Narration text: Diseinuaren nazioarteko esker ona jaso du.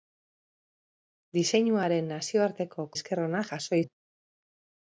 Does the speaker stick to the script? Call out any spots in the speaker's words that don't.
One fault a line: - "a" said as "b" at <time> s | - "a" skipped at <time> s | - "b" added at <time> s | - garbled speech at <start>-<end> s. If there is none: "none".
none